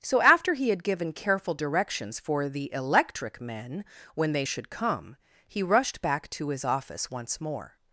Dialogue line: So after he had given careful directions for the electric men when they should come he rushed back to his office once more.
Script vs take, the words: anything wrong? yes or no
no